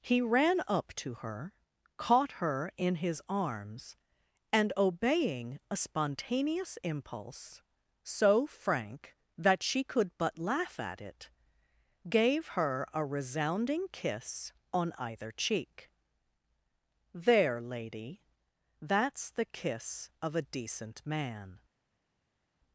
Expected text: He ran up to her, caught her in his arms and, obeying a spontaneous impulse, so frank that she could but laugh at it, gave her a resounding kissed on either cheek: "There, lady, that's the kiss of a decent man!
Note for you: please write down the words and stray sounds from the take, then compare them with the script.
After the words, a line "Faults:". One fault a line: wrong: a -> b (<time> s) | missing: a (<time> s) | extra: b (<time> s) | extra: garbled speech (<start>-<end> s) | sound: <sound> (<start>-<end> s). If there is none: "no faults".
He ran up to her, caught her in his arms and, obeying a spontaneous impulse, so frank that she could but laugh at it, gave her a resounding kiss on either cheek: "There, lady, that's the kiss of a decent man!
Faults:
wrong: kissed -> kiss (13.9 s)